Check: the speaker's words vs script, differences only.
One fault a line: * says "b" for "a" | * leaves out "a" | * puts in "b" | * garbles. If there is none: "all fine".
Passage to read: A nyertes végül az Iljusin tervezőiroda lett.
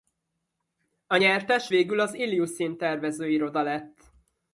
all fine